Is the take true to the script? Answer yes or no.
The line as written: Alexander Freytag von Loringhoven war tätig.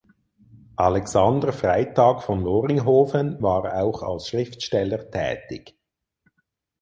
no